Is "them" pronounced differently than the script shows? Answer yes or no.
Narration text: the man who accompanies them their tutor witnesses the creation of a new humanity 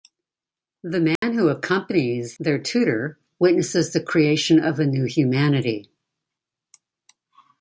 yes